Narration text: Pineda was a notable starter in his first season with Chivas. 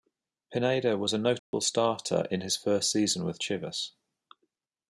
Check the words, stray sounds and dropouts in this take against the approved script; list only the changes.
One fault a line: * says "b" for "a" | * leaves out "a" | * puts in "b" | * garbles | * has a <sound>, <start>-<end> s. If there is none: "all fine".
* has a dropout, 1.4-1.5 s